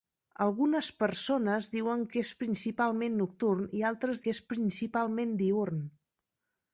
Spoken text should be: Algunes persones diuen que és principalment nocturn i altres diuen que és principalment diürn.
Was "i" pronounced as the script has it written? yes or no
yes